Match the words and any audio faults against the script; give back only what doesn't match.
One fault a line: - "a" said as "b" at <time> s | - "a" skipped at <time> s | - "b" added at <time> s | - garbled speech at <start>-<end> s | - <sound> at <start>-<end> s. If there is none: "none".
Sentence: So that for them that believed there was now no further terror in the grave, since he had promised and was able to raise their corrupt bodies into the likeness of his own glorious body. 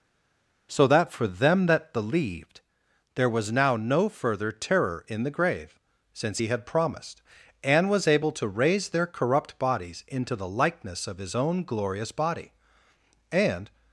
- "And" added at 13.3 s